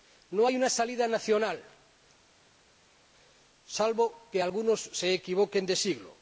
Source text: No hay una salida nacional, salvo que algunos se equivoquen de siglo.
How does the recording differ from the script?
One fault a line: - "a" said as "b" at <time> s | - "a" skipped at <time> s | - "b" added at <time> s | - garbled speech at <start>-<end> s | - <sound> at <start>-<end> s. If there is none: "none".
none